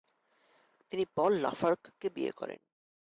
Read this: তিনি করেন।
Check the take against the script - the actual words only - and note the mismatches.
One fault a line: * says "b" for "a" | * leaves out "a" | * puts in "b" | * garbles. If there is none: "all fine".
* puts in "পল লাফার্গকে বিয়ে"